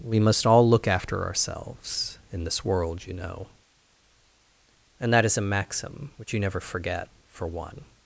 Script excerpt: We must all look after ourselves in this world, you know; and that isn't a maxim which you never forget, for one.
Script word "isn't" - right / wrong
wrong